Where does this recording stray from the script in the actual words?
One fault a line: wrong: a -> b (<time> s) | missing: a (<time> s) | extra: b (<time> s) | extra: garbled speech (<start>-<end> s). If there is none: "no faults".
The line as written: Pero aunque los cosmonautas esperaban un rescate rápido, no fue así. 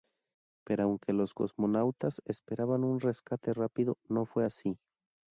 no faults